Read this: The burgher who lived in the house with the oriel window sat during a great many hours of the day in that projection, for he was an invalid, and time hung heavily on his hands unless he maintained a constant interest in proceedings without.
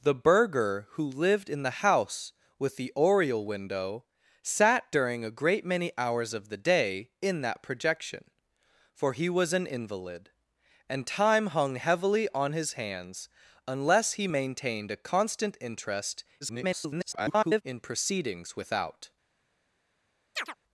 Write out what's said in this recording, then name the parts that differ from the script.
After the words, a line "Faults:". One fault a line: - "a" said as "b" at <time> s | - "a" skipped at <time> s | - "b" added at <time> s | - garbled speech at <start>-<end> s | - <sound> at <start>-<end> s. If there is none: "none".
The burgher who lived in the house with the oriel window sat during a great many hours of the day in that projection, for he was an invalid, and time hung heavily on his hands unless he maintained a constant interest [garbled] in proceedings without.
Faults:
- garbled speech at 16.4-17.6 s
- chirp at 20.4-20.5 s